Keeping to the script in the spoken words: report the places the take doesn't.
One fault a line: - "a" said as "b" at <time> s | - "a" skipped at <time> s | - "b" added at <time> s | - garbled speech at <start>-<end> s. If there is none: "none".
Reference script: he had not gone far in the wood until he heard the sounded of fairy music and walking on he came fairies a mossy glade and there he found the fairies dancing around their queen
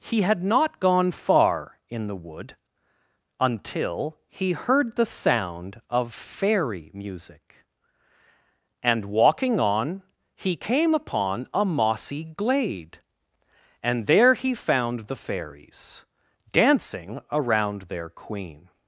- "sounded" said as "sound" at 5.0 s
- "fairies" said as "upon" at 10.9 s